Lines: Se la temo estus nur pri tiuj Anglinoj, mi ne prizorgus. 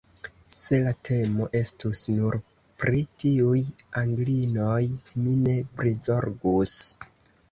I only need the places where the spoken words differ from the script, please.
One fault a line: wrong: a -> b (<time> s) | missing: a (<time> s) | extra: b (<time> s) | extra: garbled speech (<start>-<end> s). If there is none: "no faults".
no faults